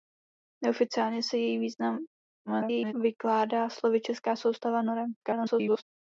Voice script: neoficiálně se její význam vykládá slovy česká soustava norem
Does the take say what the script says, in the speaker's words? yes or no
no